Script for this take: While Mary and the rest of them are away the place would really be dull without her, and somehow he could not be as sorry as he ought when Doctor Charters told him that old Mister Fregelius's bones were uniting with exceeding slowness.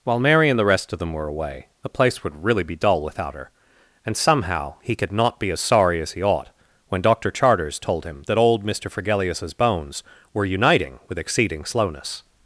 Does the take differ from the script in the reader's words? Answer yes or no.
yes